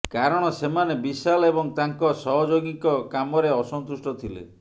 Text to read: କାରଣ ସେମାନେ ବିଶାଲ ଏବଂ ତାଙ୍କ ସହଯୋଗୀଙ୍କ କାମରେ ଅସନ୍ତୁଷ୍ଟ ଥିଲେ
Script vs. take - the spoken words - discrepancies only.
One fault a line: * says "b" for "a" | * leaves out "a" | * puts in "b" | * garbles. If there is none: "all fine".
all fine